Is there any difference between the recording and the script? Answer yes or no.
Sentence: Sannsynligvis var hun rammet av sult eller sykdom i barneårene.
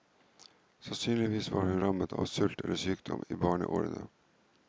no